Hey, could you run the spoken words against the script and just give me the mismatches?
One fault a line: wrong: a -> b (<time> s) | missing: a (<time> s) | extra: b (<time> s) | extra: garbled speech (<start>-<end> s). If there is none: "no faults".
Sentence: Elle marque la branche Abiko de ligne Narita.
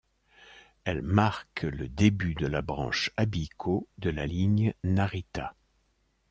extra: le début de (1.6 s)
extra: la (4.1 s)